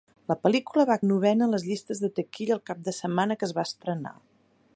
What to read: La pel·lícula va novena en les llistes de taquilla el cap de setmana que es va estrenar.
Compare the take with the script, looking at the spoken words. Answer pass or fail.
pass